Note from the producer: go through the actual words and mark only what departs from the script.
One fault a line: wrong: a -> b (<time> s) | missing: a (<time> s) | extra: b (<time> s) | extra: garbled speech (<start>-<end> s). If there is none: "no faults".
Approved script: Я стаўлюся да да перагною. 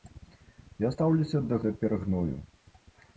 no faults